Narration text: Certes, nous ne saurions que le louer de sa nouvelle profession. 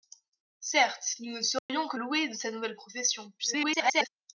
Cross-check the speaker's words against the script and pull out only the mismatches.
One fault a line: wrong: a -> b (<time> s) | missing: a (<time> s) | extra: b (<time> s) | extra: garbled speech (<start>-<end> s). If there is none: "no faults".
missing: le (2.0 s)
extra: garbled speech (3.4-4.1 s)